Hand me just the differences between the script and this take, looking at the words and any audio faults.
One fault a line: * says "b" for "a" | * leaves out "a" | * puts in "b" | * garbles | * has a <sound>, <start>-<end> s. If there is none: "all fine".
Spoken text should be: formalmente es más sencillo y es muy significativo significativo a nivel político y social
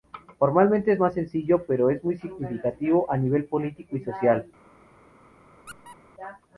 * says "pero" for "y"
* leaves out "significativo"
* has a squeak, 5.7-6.0 s